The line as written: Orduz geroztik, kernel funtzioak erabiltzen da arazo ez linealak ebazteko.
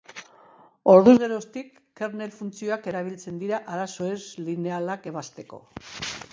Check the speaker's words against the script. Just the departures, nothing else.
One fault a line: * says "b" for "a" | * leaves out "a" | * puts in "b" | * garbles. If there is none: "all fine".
* says "dira" for "da"